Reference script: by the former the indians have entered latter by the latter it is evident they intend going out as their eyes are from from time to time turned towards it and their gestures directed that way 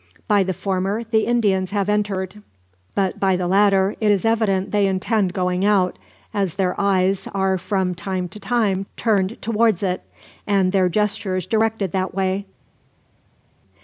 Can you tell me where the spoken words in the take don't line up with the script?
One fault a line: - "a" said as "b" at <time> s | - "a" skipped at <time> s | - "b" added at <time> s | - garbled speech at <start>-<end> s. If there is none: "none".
- "latter" said as "but" at 3.0 s
- "from" skipped at 7.9 s